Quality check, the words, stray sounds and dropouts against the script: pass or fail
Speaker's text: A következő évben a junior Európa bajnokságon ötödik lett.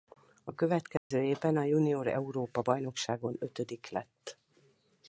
fail